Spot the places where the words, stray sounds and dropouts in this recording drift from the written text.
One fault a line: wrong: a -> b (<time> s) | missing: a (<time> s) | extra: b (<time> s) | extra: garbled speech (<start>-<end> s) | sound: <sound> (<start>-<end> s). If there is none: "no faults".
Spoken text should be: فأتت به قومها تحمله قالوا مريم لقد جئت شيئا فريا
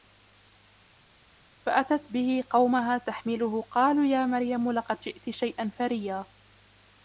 extra: يا (4.0 s)